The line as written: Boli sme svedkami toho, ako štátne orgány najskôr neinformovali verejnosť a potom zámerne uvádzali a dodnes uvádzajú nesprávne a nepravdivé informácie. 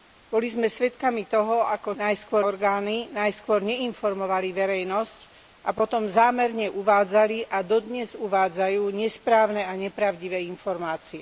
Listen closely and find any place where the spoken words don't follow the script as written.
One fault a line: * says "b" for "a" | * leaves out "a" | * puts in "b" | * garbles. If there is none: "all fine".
* says "najskôr" for "štátne"